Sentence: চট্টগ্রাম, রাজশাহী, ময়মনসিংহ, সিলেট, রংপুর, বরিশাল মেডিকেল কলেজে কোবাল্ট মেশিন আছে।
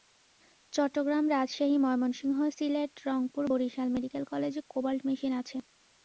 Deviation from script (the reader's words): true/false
false